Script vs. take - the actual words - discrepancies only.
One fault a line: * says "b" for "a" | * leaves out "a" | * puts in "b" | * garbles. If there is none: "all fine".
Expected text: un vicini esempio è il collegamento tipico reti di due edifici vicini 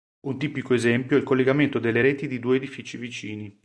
* says "tipico" for "vicini"
* says "delle" for "tipico"